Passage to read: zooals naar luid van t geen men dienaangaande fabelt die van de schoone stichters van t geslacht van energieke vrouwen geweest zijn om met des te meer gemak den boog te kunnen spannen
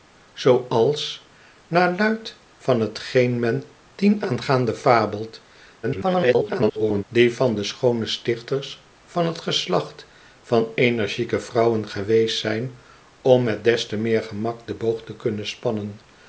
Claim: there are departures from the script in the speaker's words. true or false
true